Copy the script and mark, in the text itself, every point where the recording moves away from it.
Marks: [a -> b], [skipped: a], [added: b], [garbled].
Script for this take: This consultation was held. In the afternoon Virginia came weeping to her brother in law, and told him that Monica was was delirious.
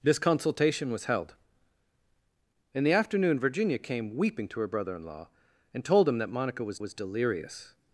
This consultation was held. In the afternoon Virginia came weeping to her brother in law, and told him that Monica was was delirious.